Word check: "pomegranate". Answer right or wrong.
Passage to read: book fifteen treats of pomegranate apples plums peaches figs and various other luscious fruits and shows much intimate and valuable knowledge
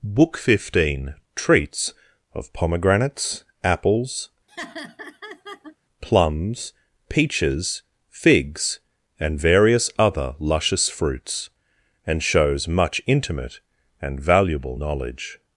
wrong